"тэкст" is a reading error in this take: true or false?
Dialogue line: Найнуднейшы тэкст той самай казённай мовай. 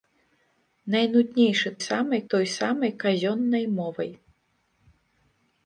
true